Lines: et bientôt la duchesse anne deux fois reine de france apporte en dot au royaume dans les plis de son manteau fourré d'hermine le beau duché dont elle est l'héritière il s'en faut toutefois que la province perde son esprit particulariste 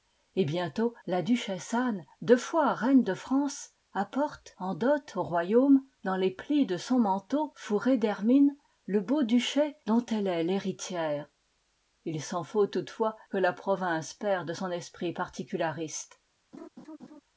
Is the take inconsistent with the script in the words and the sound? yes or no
yes